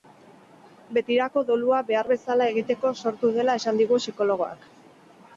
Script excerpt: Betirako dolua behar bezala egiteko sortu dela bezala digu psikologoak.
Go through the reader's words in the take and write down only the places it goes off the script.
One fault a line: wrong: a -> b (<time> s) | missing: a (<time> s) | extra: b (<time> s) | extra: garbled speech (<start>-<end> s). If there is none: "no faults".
wrong: bezala -> esan (3.6 s)